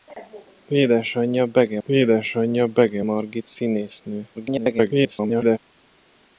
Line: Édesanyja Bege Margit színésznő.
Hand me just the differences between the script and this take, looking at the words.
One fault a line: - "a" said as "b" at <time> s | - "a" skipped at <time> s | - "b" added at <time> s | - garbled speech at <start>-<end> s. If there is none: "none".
- "édesanyja Bege" added at 1.8 s
- garbled speech at 4.3-5.6 s